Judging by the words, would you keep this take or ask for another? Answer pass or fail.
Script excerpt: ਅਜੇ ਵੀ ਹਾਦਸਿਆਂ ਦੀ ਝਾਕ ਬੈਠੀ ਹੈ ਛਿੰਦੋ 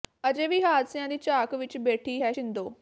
fail